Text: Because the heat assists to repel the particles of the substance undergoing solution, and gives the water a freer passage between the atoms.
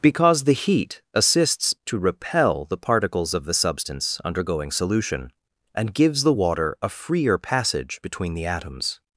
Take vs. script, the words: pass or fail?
pass